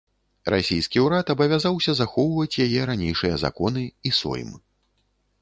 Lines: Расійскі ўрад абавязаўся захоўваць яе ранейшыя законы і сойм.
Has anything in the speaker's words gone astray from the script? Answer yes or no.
no